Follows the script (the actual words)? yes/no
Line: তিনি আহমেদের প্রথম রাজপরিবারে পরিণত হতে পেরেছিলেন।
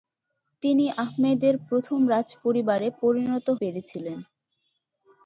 no